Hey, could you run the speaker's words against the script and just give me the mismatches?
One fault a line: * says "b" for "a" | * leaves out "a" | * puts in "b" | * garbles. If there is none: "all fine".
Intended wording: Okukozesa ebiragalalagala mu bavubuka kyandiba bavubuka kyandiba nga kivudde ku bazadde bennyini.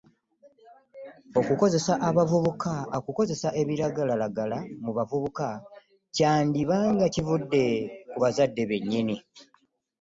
* leaves out "bavubuka kyandiba"